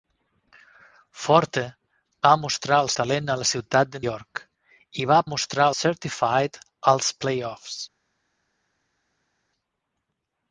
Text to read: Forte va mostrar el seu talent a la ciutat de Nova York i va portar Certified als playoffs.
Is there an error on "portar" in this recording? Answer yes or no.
yes